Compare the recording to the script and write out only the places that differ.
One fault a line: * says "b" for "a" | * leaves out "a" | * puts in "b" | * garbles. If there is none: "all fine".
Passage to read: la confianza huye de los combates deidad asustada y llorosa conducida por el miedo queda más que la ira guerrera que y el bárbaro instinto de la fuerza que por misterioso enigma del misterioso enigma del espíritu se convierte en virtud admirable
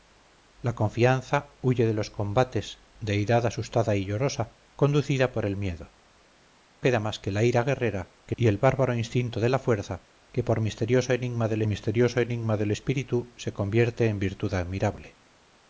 all fine